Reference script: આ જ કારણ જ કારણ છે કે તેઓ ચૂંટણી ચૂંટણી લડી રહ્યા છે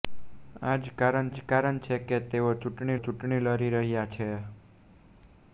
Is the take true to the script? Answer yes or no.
yes